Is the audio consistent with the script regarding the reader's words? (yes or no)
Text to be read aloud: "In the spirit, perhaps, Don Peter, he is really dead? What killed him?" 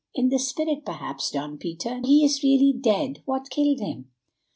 yes